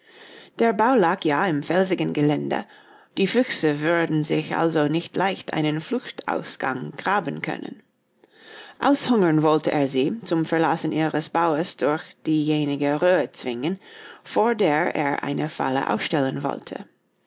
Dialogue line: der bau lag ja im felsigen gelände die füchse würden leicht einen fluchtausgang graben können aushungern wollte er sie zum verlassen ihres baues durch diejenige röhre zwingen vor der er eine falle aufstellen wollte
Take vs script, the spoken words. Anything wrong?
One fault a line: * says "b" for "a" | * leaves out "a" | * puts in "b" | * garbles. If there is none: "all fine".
* puts in "sich also nicht"